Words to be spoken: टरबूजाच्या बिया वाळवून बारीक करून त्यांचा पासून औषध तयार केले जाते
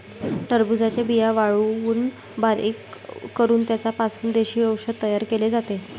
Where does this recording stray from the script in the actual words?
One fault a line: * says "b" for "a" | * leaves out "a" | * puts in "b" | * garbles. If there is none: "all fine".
* puts in "देशी"